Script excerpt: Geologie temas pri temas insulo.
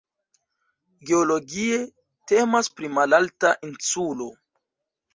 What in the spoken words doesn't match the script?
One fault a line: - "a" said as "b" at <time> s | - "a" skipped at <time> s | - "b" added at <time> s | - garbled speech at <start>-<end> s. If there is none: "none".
- "temas" said as "malalta" at 2.9 s